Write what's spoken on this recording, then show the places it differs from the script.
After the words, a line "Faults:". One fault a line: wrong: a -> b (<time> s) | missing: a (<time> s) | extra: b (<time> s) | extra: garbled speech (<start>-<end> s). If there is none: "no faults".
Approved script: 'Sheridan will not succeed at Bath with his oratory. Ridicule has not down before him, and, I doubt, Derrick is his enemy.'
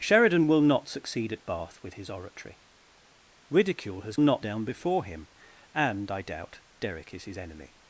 'Sheridan will not succeed at Bath with his oratory. Ridicule has not down before him, and, I doubt, Derrick is his enemy.'
Faults:
no faults